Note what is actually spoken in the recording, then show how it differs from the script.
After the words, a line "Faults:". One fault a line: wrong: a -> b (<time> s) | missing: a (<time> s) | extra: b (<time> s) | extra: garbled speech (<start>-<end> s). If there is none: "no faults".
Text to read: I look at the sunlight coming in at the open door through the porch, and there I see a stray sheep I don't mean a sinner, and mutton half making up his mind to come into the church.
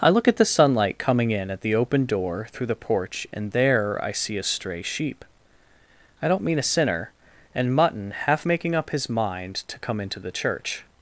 I look at the sunlight coming in at the open door through the porch, and there I see a stray sheep I don't mean a sinner, and mutton half making up his mind to come into the church.
Faults:
no faults